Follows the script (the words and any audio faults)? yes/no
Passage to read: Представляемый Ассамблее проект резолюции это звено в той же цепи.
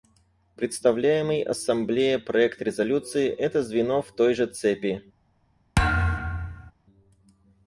no